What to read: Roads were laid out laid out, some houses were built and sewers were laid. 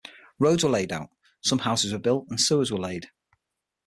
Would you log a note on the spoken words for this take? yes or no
yes